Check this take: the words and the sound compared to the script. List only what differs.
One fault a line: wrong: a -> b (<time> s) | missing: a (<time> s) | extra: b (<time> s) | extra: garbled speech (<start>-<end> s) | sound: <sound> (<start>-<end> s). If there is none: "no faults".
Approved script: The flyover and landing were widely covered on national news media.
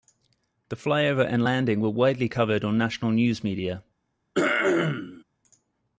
sound: throat clearing (4.3-5.2 s)